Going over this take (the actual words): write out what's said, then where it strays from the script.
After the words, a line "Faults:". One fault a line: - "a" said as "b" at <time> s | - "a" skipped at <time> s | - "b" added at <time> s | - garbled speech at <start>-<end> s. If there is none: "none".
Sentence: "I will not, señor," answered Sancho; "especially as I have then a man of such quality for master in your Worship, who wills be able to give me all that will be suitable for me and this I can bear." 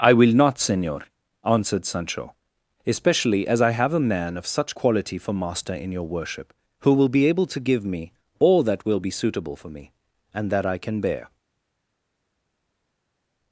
"I will not, señor," answered Sancho; "especially as I have a man of such quality for master in your Worship, who will be able to give me all that will be suitable for me and that I can bear."
Faults:
- "then" skipped at 3.9 s
- "wills" said as "will" at 6.9 s
- "this" said as "that" at 10.5 s